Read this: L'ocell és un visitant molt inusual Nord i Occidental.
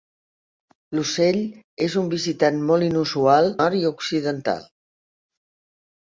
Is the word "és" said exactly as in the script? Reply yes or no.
yes